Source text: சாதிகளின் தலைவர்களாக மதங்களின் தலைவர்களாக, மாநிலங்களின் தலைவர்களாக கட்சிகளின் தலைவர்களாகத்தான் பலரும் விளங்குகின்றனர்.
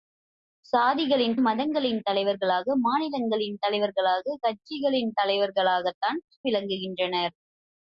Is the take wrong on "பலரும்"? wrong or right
wrong